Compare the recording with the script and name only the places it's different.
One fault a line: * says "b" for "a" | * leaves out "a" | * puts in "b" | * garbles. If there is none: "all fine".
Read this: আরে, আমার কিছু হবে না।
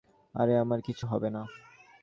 all fine